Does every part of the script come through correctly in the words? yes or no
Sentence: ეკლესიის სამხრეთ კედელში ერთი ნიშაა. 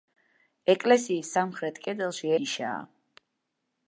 no